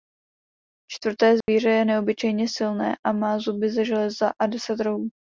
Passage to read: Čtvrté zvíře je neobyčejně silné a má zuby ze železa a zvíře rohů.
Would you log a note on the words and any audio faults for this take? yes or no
yes